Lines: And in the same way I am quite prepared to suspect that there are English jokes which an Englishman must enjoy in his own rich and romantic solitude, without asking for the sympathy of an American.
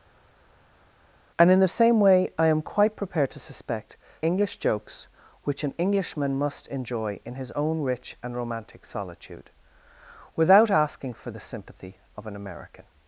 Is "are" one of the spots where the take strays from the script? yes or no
yes